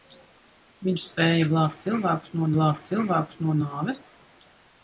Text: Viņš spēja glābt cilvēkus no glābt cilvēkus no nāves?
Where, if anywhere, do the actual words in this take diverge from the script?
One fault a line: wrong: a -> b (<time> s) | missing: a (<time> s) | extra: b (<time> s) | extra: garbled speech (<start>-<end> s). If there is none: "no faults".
no faults